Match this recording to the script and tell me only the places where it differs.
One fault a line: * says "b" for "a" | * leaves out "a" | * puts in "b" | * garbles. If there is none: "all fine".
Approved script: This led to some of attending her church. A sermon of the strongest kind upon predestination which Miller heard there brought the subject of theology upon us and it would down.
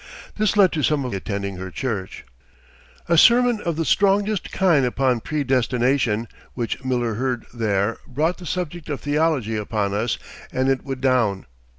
all fine